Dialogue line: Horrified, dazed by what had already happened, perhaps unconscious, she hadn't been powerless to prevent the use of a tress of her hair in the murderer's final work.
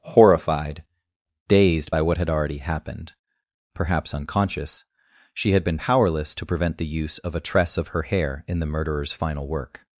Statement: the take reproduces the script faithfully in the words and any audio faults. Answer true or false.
false